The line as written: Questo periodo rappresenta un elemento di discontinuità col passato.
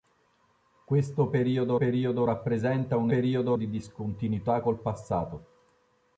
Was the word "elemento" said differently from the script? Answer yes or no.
yes